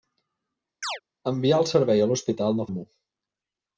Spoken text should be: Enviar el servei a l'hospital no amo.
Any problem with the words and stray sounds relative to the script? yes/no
yes